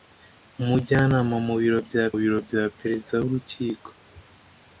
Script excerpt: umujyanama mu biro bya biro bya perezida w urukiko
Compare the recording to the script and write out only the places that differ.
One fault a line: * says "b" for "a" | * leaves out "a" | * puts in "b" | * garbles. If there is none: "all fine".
all fine